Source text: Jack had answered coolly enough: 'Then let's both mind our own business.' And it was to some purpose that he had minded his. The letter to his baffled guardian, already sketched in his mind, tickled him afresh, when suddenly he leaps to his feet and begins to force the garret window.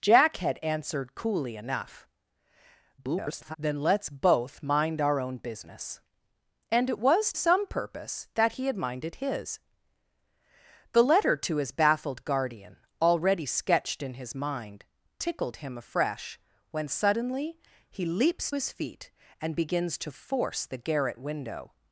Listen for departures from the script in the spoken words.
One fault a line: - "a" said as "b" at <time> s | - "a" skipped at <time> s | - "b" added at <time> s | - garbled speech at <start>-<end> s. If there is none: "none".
- garbled speech at 3.0-3.6 s
- "to" skipped at 7.3 s
- "to" skipped at 18.5 s